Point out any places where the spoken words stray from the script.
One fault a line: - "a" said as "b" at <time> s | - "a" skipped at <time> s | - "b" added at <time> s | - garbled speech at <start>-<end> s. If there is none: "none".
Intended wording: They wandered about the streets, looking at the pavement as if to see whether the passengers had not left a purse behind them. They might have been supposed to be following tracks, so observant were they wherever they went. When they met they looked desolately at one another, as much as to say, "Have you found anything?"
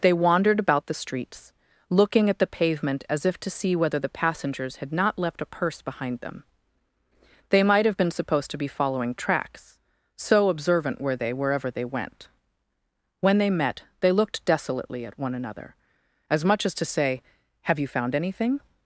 none